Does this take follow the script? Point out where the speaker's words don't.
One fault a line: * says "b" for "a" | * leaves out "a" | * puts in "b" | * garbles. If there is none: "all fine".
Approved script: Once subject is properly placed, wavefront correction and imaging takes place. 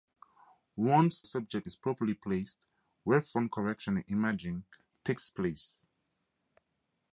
all fine